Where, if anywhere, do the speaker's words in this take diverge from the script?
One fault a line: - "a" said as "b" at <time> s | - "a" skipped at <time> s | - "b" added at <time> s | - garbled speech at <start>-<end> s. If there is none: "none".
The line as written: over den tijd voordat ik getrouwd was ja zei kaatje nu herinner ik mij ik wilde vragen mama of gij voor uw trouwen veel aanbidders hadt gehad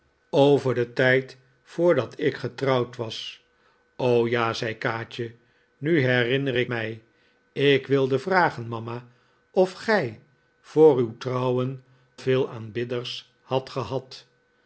none